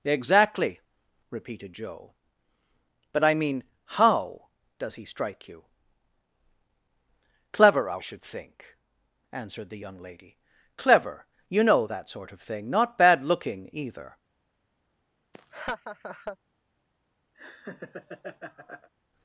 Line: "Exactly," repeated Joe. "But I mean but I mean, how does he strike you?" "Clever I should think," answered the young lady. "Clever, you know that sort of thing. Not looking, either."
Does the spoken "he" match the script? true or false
true